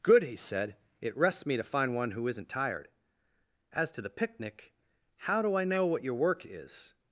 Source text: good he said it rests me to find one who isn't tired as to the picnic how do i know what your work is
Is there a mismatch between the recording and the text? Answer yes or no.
no